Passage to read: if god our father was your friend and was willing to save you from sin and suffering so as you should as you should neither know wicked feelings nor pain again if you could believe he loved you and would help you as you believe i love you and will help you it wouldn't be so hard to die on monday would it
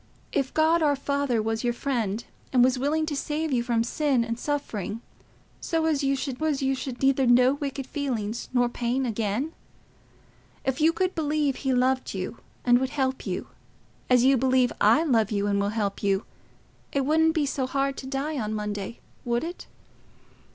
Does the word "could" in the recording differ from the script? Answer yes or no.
no